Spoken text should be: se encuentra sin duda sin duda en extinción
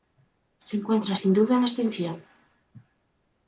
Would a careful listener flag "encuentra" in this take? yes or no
no